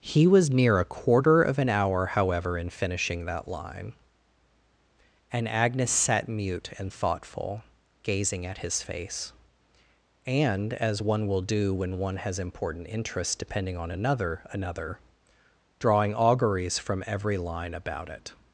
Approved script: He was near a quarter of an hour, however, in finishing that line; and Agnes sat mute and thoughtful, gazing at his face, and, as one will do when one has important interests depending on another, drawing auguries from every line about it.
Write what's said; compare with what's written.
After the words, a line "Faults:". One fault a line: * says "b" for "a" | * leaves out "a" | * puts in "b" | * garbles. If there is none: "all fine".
He was near a quarter of an hour, however, in finishing that line; and Agnes sat mute and thoughtful, gazing at his face, and, as one will do when one has important interests depending on another another, drawing auguries from every line about it.
Faults:
* puts in "another"